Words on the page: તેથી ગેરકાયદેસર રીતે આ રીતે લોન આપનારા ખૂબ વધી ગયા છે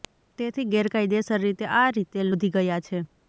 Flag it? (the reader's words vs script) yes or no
yes